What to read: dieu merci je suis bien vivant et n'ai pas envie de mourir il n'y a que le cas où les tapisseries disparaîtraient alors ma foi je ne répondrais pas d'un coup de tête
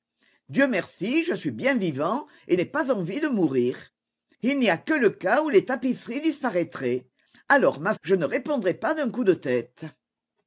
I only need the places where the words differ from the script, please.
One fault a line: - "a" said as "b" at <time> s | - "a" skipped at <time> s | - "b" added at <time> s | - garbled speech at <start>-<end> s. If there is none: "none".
- "foi" skipped at 7.9 s